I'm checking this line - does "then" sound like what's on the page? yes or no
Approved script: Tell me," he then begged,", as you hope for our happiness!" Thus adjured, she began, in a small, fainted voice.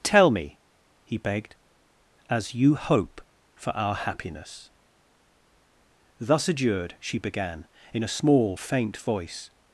no